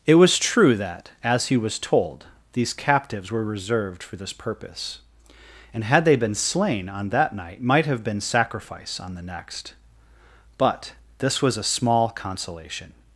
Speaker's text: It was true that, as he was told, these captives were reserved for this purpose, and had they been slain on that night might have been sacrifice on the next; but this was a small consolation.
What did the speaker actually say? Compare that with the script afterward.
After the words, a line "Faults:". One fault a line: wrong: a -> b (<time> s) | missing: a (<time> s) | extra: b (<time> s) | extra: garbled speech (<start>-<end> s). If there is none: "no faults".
It was true that, as he was told, these captives were reserved for this purpose, and had they been slain on that night might have been sacrifice on the next; but this was a small consolation.
Faults:
no faults